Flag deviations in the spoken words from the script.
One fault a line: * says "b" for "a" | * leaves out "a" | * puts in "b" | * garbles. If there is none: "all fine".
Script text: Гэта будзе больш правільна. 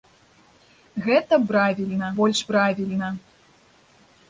* says "правільна" for "будзе"